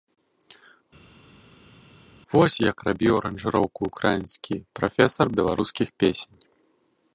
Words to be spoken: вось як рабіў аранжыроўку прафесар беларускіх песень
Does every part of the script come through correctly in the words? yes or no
no